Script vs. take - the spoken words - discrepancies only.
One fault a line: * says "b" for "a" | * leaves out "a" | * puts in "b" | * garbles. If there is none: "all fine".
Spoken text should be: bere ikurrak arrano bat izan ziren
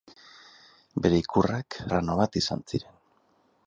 all fine